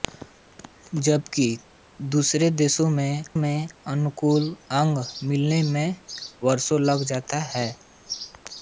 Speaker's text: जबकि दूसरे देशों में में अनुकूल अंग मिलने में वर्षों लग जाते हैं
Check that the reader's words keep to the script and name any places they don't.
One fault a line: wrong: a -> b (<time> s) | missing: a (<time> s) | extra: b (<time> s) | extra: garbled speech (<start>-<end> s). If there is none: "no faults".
no faults